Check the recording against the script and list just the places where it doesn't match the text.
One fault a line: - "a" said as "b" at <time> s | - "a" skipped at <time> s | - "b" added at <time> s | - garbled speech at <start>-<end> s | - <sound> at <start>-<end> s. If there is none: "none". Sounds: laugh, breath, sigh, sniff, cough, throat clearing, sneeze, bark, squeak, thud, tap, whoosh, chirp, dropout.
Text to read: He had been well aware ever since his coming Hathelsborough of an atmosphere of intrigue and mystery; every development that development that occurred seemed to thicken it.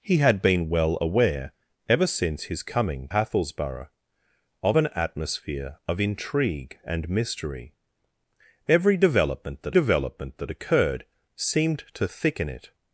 none